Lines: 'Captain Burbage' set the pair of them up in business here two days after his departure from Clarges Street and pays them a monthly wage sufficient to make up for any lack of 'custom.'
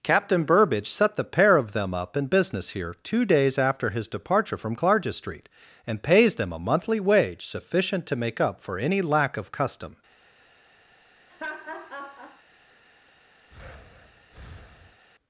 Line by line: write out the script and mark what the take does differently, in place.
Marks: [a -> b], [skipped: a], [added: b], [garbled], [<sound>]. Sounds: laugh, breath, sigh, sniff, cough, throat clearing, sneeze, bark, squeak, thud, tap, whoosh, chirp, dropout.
'Captain Burbage' set the pair of them up in business here two days after his departure from Clarges Street and pays them a monthly wage sufficient to make up for any lack of 'custom.' [laugh] [breath]